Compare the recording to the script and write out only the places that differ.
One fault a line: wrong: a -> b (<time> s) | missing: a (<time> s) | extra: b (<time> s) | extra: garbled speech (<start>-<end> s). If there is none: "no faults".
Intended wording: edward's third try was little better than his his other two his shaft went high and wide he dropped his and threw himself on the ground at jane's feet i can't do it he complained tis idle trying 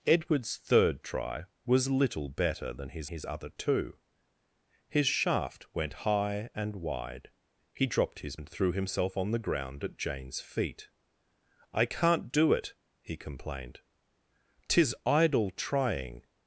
no faults